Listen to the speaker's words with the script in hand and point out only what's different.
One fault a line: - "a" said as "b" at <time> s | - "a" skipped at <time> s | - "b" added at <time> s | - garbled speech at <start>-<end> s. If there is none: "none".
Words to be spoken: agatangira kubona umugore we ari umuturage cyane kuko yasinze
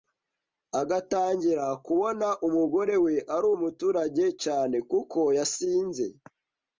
none